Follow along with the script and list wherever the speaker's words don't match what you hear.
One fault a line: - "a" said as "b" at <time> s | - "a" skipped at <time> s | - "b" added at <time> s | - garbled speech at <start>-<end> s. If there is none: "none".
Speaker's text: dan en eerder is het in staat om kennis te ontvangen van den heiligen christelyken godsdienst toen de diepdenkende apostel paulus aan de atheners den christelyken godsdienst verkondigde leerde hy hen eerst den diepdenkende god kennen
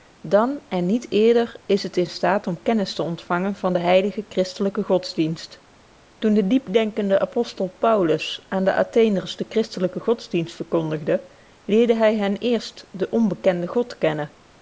- "niet" added at 0.8 s
- "diepdenkende" said as "onbekenden" at 13.1 s